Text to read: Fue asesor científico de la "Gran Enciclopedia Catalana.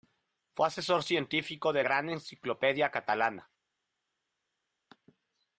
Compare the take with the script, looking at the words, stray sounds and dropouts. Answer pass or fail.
fail